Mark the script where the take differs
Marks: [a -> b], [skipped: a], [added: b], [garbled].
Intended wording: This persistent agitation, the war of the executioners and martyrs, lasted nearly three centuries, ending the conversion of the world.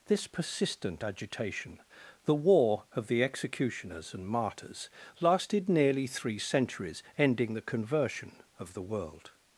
This persistent agitation, the war of the executioners and martyrs, lasted nearly three centuries, ending the conversion of the world.